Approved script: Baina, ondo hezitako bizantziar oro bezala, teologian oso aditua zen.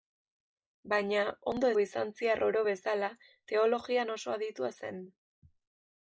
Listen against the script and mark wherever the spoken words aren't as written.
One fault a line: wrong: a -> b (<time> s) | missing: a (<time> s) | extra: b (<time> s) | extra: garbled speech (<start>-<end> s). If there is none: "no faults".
missing: hezitako (1.7 s)